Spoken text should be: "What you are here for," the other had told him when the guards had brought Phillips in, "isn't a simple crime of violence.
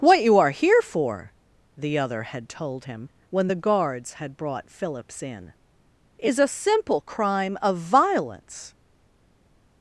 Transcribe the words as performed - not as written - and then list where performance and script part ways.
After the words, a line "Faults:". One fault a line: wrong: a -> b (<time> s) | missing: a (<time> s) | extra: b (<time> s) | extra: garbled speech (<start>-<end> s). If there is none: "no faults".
"What you are here for," the other had told him when the guards had brought Phillips in, "is a simple crime of violence.
Faults:
wrong: isn't -> is (6.2 s)